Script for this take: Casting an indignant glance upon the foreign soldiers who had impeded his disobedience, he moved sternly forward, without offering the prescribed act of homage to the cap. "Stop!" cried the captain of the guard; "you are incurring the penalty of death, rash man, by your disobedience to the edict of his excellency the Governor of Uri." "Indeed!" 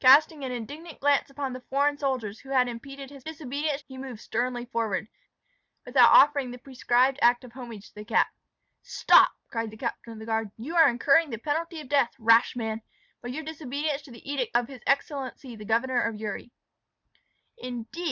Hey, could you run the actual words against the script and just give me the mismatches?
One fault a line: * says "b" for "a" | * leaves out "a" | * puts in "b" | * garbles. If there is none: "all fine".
all fine